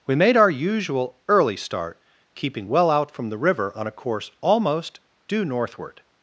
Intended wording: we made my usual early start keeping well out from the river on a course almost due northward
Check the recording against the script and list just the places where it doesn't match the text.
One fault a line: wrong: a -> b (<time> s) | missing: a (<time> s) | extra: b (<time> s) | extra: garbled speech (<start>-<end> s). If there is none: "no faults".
wrong: my -> our (0.3 s)